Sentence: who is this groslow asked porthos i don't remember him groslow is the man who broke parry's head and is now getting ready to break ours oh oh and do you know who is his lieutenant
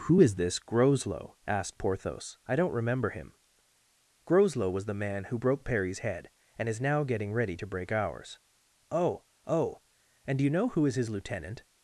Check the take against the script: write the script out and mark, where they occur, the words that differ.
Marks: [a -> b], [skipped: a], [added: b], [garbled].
who is this groslow asked porthos i don't remember him groslow [is -> was] the man who broke parry's head and is now getting ready to break ours oh oh and do you know who is his lieutenant